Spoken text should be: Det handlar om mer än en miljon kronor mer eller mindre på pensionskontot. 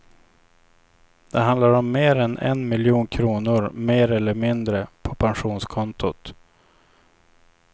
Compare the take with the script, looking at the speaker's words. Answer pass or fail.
pass